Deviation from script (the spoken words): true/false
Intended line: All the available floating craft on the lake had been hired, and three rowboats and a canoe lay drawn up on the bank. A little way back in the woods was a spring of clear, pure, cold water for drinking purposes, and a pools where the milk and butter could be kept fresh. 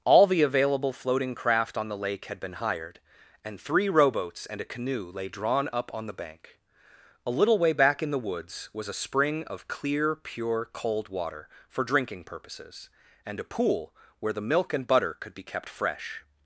true